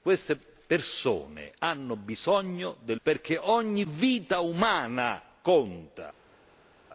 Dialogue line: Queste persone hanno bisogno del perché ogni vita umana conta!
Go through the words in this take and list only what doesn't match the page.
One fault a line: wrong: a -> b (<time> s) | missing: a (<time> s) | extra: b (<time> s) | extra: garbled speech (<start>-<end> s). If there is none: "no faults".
no faults